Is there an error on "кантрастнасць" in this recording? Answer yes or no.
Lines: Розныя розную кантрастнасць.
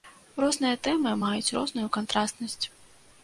no